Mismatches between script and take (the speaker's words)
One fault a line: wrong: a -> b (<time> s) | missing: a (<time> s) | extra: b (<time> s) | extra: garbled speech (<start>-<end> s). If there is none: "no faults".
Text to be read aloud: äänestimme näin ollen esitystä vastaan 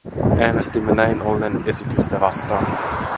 no faults